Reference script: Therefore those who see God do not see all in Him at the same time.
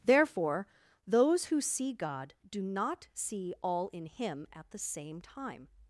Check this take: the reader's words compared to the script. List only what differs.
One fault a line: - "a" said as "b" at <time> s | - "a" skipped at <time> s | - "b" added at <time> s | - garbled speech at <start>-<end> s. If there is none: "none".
none